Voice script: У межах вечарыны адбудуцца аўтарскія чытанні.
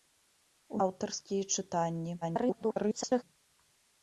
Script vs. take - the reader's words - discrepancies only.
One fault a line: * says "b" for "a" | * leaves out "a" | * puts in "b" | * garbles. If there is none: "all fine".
* leaves out "межах вечарыны адбудуцца"
* garbles